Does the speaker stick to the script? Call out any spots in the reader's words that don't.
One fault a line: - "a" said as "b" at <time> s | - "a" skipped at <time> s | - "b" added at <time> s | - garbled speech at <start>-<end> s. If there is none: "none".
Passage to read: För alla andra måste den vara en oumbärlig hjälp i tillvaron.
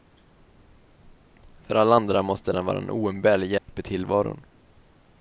none